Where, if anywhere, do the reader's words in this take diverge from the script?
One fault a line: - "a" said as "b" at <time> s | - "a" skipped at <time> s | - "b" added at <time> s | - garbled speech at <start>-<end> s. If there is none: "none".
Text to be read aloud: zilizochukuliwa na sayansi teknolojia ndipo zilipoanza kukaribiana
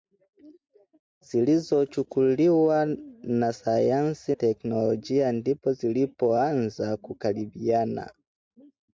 none